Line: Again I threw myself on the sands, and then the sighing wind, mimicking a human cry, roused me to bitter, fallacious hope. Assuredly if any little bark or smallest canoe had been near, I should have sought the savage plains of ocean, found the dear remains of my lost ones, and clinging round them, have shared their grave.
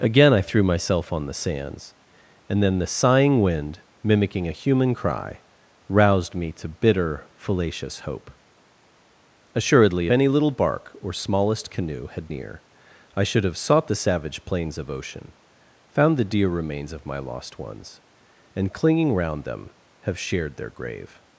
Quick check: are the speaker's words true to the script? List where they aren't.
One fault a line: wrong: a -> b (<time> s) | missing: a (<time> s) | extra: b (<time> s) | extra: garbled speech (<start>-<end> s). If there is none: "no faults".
missing: if (10.1 s)
missing: been (12.3 s)